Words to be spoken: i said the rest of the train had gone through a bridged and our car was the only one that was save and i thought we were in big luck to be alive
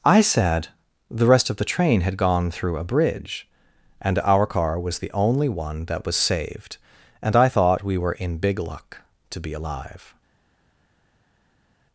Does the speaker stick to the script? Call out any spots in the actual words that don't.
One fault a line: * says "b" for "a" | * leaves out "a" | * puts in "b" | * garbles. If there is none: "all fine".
* says "bridge" for "bridged"
* says "saved" for "save"